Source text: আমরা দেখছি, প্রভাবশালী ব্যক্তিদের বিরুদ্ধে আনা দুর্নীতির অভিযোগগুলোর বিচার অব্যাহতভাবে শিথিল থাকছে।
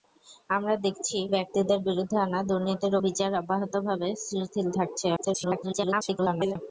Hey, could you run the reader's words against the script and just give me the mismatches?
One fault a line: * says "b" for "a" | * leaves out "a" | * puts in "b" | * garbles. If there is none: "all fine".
* leaves out "প্রভাবশালী"
* leaves out "অভিযোগগুলোর"
* garbles